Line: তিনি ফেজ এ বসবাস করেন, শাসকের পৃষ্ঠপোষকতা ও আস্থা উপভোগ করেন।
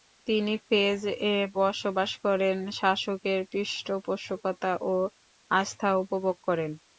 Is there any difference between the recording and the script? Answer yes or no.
no